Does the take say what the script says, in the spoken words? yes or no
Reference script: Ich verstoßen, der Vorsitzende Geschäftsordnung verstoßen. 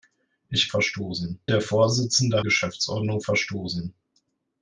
yes